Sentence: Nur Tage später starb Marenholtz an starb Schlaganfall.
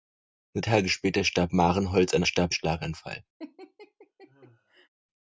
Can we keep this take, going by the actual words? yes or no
yes